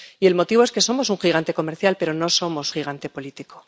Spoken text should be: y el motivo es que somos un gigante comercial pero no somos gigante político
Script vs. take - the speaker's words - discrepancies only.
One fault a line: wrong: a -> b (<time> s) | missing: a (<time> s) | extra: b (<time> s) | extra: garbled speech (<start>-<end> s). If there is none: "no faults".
no faults